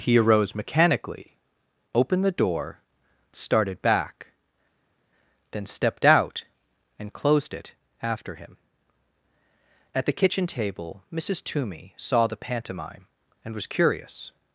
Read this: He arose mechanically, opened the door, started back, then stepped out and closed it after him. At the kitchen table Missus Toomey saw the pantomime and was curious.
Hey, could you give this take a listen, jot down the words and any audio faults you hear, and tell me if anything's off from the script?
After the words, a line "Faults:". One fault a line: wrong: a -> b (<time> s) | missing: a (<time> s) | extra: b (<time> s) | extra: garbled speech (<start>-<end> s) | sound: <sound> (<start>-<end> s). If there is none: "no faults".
He arose mechanically, opened the door, started back, then stepped out and closed it after him. At the kitchen table Missus Toomey saw the pantomime and was curious.
Faults:
no faults